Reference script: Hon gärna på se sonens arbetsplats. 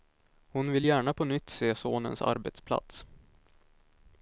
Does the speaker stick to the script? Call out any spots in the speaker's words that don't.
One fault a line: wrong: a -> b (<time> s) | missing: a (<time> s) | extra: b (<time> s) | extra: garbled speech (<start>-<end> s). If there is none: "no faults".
extra: vill (0.7 s)
extra: nytt (1.2 s)